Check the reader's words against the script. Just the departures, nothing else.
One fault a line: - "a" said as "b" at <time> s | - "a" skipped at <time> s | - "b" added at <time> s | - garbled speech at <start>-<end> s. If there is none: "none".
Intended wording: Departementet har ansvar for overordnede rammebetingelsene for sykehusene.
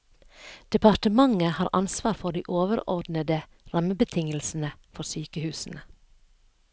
- "de" added at 2.3 s